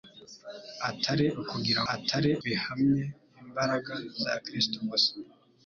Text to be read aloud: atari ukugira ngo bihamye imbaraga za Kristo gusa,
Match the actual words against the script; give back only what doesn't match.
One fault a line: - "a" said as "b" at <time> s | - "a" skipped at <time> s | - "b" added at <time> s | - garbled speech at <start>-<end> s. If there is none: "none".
- "ngo" said as "atari" at 1.9 s